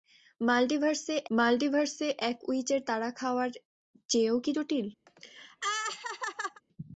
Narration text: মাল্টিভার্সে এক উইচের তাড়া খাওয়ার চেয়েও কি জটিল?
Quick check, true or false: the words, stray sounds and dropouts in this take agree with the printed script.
false